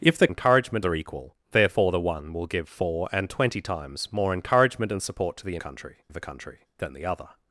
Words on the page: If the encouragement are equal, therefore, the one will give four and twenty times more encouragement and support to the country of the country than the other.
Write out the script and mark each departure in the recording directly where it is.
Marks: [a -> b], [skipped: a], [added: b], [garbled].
If the encouragement are equal, therefore, the one will give four and twenty times more encouragement and support to the country of the country than the other.